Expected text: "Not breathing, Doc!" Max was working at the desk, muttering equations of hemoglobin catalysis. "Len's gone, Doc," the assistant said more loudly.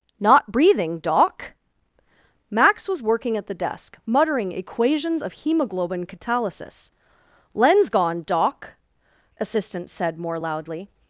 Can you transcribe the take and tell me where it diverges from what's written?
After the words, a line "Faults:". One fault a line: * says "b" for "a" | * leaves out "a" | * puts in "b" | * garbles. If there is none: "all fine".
"Not breathing, Doc!" Max was working at the desk, muttering equations of hemoglobin catalysis. "Len's gone, Doc," assistant said more loudly.
Faults:
* leaves out "the"